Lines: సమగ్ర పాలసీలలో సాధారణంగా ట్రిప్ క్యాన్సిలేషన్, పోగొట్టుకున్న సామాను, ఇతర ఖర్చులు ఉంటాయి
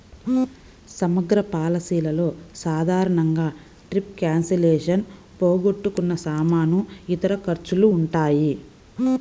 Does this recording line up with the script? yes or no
yes